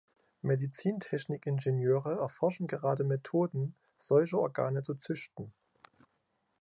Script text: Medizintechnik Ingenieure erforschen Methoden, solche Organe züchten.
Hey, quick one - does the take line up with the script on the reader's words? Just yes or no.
no